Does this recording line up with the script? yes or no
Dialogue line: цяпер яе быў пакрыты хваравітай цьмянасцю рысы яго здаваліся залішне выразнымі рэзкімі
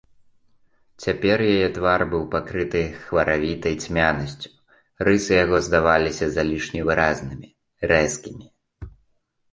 no